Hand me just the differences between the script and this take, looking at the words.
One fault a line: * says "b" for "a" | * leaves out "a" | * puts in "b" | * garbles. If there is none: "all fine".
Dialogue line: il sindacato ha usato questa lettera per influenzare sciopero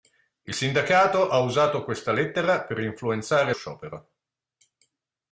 all fine